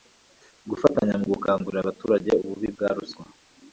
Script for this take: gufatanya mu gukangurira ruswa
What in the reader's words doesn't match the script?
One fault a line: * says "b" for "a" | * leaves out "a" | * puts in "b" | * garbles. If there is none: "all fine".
* puts in "abaturage ububi bwa"